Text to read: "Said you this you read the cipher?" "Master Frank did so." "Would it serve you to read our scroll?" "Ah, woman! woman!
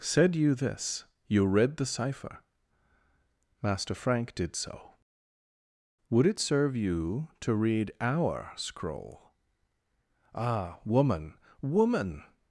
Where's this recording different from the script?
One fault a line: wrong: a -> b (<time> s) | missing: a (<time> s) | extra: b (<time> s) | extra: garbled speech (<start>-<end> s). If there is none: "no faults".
no faults